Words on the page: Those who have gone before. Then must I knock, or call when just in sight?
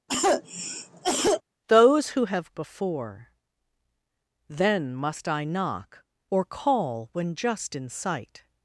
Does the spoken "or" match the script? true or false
true